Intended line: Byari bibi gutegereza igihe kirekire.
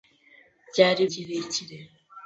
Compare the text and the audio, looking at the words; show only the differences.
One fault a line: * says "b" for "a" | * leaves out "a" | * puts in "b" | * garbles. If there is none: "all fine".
* leaves out "bibi gutegereza igihe"